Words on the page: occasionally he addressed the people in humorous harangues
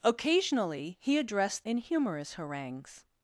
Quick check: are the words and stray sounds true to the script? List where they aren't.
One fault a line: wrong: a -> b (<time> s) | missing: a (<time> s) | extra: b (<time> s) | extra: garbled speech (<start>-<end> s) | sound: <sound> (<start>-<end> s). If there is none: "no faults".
missing: the people (1.6 s)